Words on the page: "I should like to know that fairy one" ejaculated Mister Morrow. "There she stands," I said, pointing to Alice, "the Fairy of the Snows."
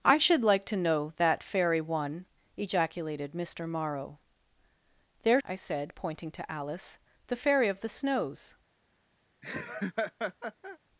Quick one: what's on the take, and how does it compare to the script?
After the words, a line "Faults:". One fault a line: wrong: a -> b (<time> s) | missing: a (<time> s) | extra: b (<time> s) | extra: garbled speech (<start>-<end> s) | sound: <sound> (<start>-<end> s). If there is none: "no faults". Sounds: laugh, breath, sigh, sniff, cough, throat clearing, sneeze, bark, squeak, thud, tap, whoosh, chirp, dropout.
"I should like to know that fairy one" ejaculated Mister Morrow. "There," I said, pointing to Alice, "the Fairy of the Snows."
Faults:
missing: she stands (5.4 s)
sound: laugh (9.4-10.8 s)